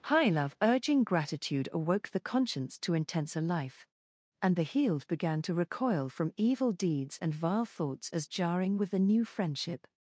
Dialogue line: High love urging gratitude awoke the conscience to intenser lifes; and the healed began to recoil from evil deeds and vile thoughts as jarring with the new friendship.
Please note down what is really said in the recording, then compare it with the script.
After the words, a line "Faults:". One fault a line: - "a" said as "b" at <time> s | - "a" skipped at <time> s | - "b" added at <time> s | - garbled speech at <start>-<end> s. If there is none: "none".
High love urging gratitude awoke the conscience to intenser life; and the healed began to recoil from evil deeds and vile thoughts as jarring with the new friendship.
Faults:
- "lifes" said as "life" at 3.4 s